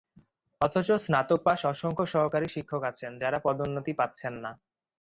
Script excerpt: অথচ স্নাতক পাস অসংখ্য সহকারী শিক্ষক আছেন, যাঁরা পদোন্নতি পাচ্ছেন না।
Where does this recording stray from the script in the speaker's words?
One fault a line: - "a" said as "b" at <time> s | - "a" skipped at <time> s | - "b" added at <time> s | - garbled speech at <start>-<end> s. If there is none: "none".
none